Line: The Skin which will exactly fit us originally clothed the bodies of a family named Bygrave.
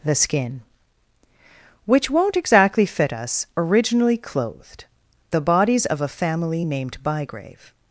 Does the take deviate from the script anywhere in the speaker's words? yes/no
yes